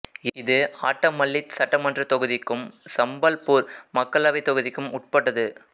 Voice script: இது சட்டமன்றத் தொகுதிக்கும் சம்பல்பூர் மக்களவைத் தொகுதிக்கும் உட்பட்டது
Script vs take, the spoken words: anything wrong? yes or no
yes